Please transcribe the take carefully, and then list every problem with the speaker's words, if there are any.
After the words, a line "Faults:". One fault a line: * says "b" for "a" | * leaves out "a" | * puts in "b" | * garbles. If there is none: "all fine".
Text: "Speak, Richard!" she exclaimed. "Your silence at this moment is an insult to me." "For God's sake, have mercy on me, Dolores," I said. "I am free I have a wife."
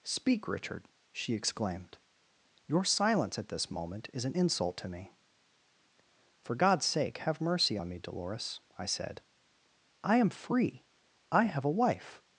"Speak, Richard!" she exclaimed. "Your silence at this moment is an insult to me." "For God's sake, have mercy on me, Dolores," I said. "I am free I have a wife."
Faults:
all fine